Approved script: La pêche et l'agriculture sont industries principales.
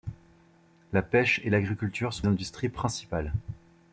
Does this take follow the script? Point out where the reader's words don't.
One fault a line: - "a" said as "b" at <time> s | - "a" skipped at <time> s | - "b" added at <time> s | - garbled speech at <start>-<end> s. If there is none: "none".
none